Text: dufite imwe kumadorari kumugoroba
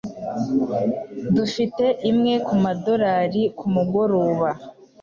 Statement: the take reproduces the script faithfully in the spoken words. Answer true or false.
true